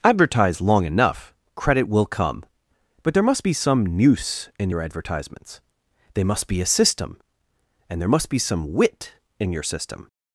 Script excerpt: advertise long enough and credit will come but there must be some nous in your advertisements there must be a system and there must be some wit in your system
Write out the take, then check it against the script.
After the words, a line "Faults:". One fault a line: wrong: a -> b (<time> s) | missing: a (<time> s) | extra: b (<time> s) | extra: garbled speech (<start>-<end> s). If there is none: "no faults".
advertise long enough credit will come but there must be some nous in your advertisements they must be a system and there must be some wit in your system
Faults:
missing: and (1.3 s)
wrong: there -> they (6.2 s)